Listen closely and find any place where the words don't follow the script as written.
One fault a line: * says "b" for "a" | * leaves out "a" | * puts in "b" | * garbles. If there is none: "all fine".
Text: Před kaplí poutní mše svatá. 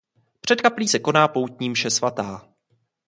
* puts in "se koná"